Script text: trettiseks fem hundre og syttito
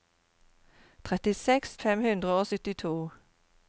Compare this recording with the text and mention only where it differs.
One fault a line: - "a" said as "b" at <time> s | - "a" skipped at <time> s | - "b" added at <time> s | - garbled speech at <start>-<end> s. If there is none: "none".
none